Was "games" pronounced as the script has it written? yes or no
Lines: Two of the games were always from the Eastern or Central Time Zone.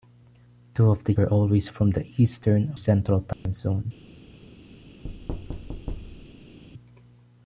no